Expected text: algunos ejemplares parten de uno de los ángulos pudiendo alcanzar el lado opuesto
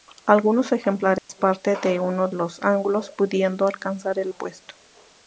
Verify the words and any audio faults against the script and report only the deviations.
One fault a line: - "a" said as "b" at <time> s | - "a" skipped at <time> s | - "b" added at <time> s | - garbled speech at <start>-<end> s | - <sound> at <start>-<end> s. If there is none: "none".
- dropout at 1.2-1.3 s
- "de" skipped at 2.3 s
- "lado" skipped at 4.3 s